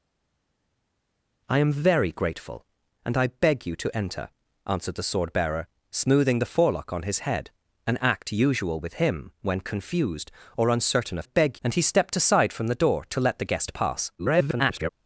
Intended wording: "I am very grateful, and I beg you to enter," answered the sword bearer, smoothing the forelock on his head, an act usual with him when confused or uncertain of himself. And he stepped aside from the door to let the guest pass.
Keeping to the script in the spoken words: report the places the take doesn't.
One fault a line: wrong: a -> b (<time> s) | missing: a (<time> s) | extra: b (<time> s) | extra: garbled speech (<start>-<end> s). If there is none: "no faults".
wrong: himself -> beg (11.2 s)
extra: garbled speech (14.2-14.9 s)